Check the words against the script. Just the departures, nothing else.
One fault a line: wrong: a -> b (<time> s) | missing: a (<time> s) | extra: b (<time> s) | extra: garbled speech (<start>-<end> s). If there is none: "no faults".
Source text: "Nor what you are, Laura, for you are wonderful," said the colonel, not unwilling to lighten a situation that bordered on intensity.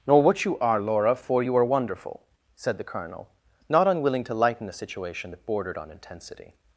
no faults